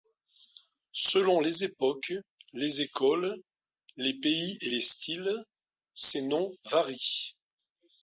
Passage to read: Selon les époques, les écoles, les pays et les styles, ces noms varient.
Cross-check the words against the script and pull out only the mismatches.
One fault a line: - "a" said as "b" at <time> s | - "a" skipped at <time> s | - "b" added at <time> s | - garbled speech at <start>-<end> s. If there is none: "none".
none